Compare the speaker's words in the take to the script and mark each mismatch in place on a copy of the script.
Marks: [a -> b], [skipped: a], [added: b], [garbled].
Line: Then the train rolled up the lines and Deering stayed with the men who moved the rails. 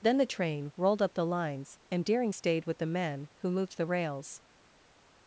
Then the train rolled up the lines and Deering stayed with the men who moved the rails.